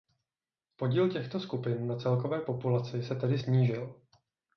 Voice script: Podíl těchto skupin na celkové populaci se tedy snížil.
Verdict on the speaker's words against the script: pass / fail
pass